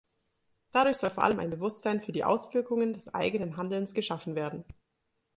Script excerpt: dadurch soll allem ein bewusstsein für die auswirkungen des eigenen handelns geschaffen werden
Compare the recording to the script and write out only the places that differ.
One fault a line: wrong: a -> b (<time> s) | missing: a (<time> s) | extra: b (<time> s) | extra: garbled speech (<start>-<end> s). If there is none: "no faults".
extra: vor (1.1 s)